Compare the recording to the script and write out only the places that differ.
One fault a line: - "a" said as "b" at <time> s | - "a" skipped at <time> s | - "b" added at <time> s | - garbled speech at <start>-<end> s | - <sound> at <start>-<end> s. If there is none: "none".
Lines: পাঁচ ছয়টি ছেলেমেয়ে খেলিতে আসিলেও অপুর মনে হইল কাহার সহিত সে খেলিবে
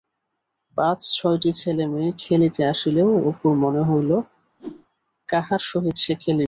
- whoosh at 4.6-4.9 s